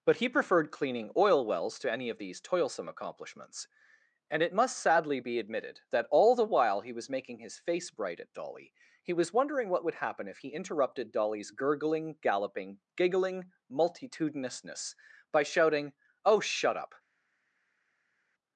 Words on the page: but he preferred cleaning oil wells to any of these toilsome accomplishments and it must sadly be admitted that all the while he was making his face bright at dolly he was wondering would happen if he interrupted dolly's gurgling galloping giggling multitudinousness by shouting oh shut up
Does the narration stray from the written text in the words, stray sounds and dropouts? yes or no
yes